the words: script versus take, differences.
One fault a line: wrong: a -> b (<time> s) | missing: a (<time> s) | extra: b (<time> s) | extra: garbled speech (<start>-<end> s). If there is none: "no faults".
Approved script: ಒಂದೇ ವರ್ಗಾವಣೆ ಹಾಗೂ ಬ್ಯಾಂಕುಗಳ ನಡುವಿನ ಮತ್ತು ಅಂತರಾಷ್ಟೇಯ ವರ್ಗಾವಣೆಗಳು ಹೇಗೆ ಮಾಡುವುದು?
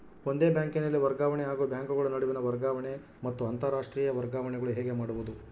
extra: ಬ್ಯಾಂಕಿನಲ್ಲಿ (0.5 s)
extra: ವರ್ಗಾವಣೆ (2.4 s)